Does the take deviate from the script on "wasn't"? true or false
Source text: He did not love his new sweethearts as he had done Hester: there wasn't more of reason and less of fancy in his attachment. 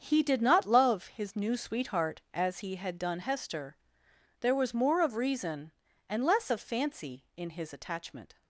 true